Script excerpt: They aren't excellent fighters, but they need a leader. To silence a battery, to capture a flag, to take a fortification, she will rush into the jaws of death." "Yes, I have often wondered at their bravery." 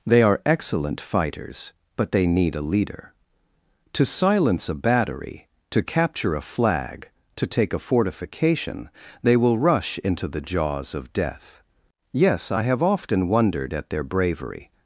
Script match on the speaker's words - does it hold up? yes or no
no